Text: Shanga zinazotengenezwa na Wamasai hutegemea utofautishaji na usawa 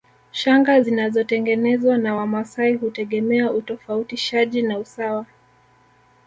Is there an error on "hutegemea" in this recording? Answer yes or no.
no